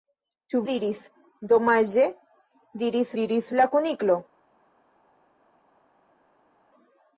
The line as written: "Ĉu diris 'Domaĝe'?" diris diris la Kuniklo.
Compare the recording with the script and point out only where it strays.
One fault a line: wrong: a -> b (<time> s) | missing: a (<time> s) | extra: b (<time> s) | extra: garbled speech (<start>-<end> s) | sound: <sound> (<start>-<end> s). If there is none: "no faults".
no faults